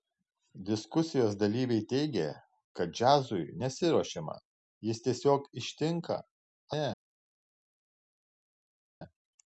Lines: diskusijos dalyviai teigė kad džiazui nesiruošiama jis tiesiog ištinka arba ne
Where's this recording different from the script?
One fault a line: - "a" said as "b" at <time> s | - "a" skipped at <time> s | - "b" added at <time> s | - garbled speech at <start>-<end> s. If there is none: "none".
- "arba" skipped at 6.2 s